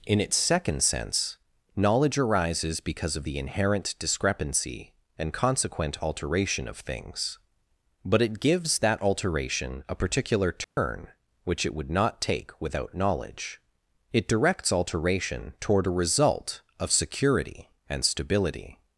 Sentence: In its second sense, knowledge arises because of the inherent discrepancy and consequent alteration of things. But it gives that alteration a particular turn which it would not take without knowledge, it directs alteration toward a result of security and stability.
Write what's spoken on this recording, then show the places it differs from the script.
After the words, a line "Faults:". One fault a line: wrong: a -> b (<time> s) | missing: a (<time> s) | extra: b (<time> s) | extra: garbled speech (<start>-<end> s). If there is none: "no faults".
In its second sense, knowledge arises because of the inherent discrepancy and consequent alteration of things. But it gives that alteration a particular turn which it would not take without knowledge, it directs alteration toward a result of security and stability.
Faults:
no faults